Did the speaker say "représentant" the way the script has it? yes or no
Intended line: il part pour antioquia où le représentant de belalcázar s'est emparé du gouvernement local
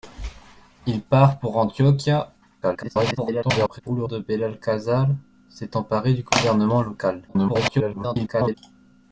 no